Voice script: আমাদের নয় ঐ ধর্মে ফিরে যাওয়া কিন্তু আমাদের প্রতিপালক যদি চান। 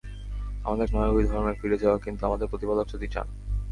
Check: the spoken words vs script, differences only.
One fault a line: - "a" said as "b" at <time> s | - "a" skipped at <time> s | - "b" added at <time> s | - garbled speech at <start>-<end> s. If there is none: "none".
none